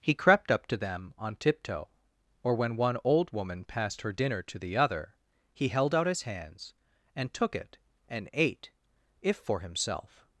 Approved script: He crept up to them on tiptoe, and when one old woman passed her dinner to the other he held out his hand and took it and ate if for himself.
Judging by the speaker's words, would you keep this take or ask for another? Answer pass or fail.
fail